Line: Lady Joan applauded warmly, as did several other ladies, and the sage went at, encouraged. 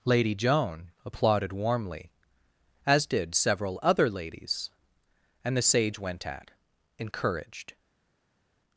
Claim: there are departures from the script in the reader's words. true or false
false